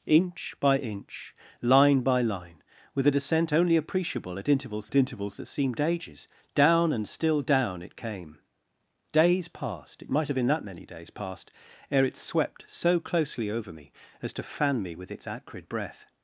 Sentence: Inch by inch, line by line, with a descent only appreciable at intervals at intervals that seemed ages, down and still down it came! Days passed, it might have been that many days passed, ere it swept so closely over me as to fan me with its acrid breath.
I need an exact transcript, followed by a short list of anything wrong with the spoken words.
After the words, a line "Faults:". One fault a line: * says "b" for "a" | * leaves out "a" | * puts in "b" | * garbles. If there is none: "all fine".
Inch by inch, line by line, with a descent only appreciable at intervals at intervals that seemed ages, down and still down it came! Days passed, it might have been that many days passed, ere it swept so closely over me as to fan me with its acrid breath.
Faults:
all fine